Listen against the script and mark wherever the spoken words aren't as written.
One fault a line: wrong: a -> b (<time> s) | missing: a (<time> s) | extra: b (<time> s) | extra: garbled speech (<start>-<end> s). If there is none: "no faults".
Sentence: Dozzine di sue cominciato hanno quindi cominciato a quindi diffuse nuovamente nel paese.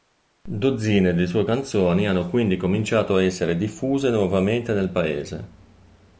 wrong: cominciato -> canzoni (1.4 s)
wrong: quindi -> essere (3.2 s)